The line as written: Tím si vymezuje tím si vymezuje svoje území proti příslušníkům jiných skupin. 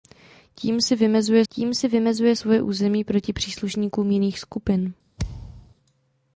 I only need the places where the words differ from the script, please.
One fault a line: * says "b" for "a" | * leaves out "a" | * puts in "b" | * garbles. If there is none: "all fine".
all fine